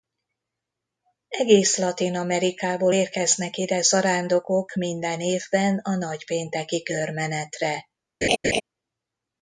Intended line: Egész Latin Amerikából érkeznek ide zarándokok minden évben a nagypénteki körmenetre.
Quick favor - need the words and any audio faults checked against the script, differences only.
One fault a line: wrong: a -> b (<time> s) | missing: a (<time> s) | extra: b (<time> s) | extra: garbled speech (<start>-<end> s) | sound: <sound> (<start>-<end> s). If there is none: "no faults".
sound: laugh (8.2-8.6 s)